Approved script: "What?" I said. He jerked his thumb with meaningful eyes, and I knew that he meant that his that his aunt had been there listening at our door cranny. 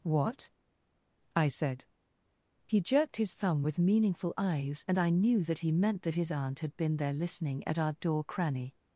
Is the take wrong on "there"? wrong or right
right